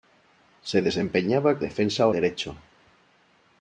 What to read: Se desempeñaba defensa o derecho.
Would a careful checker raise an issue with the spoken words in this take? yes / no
no